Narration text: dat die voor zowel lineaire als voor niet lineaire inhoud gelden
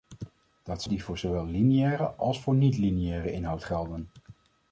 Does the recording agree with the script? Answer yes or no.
yes